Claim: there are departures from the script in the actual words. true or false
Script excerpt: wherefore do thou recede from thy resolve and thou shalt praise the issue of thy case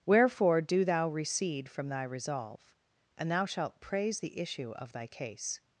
false